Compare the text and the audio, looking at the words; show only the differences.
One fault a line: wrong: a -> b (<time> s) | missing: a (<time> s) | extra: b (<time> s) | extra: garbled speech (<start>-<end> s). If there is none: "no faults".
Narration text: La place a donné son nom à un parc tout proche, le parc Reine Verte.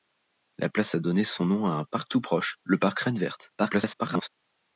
extra: garbled speech (3.6-4.3 s)